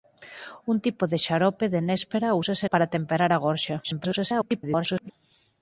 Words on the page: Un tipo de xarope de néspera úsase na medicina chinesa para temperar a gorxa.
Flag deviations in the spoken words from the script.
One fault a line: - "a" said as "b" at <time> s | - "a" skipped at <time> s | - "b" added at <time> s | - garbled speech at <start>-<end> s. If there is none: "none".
- "na medicina chinesa" skipped at 2.7 s
- garbled speech at 3.8-5.1 s